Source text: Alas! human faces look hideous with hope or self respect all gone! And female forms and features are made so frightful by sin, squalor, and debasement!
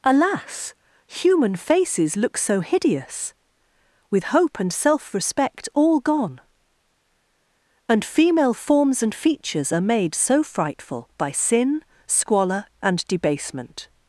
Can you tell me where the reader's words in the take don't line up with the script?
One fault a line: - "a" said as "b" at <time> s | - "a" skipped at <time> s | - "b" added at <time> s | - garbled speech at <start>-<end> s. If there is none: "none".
- "so" added at 2.4 s
- "or" said as "and" at 4.6 s